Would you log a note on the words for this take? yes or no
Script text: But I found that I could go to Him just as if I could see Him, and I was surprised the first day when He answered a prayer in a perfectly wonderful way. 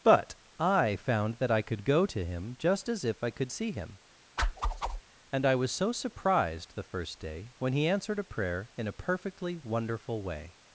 yes